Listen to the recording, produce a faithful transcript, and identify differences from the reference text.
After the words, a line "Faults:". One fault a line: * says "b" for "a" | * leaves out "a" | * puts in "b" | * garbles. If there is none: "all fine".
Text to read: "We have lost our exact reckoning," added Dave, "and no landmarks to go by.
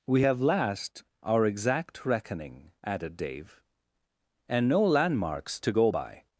"We have last our exact reckoning," added Dave, "and no landmarks to go by.
Faults:
* says "last" for "lost"